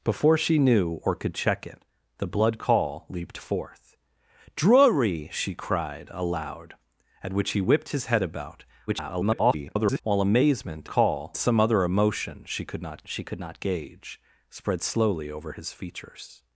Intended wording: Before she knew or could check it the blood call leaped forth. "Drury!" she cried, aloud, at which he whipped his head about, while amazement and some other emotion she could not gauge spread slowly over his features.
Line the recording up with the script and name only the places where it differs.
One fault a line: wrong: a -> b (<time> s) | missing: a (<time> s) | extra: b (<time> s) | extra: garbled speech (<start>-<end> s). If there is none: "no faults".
extra: garbled speech (8.9-10.0 s)
wrong: and -> call (10.9 s)
extra: she could not (13.1 s)